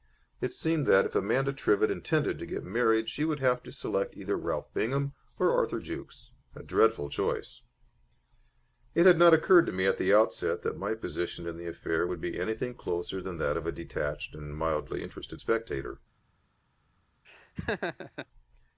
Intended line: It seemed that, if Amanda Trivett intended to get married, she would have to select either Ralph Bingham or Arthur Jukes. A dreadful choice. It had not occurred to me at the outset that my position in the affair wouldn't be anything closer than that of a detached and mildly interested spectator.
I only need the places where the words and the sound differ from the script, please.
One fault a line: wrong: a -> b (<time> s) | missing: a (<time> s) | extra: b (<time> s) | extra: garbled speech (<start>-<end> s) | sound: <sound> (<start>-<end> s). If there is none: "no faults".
wrong: wouldn't -> would (12.1 s)
sound: laugh (17.2-18.3 s)